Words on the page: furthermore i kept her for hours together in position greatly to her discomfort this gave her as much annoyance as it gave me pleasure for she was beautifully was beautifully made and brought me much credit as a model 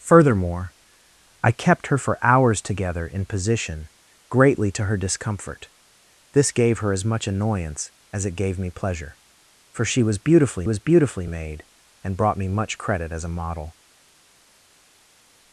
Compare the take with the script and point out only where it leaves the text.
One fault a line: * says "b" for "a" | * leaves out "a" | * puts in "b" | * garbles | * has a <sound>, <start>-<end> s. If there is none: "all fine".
all fine